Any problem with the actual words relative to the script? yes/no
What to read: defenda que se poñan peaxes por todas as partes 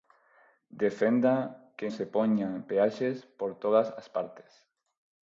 no